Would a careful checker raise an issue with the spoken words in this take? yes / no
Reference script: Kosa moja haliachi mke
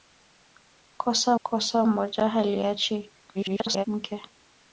yes